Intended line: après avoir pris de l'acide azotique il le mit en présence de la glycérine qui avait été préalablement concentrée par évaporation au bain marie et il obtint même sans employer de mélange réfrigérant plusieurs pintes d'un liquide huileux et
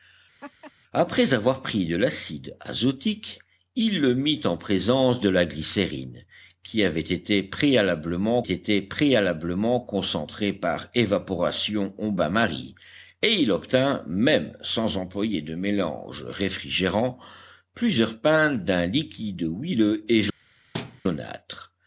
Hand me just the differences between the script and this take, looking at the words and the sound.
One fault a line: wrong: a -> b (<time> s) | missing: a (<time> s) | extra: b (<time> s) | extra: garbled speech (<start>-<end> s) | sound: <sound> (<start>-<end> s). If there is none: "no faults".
sound: laugh (0.4-0.7 s)
extra: été préalablement (8.4 s)
sound: thud (20.7-21.0 s)